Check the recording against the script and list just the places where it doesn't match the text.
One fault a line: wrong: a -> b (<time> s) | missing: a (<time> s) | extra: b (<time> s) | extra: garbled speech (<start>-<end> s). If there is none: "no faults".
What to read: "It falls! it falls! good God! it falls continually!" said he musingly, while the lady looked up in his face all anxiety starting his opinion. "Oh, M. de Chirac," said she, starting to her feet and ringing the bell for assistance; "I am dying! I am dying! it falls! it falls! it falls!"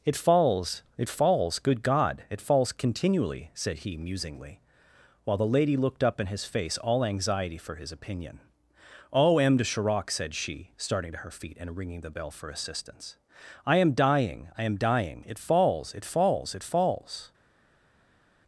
wrong: starting -> for (7.6 s)